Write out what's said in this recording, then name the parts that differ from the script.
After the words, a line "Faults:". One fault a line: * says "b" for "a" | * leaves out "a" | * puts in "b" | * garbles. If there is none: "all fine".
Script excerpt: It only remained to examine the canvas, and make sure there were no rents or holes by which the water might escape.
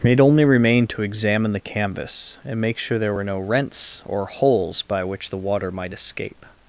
It only remained to examine the canvas, and make sure there were no rents or holes by which the water might escape.
Faults:
all fine